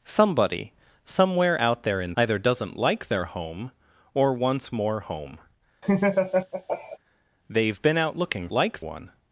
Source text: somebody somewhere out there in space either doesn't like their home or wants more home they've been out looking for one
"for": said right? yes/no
no